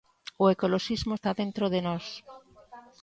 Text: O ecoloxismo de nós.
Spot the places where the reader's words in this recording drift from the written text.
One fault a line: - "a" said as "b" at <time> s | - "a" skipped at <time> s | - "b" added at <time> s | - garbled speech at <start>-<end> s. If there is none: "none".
- "está dentro" added at 1.1 s